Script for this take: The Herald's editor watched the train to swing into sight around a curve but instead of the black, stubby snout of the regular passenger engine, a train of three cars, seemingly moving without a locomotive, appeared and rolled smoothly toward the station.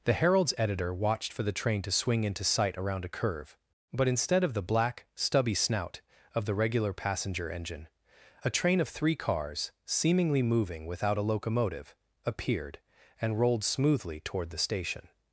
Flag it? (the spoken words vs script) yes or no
yes